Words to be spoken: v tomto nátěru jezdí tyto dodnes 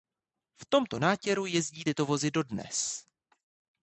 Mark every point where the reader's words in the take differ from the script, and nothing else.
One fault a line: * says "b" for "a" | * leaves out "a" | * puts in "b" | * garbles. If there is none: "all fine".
* puts in "vozy"